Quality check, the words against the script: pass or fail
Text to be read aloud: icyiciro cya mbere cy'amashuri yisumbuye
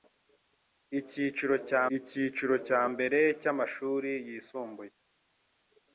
fail